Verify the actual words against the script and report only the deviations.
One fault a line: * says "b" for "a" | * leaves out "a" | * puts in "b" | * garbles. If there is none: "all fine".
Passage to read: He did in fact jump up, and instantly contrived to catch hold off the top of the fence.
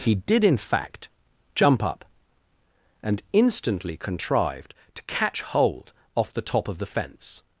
all fine